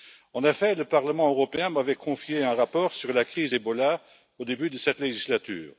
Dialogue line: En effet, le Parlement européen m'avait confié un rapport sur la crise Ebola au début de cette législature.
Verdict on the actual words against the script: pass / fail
pass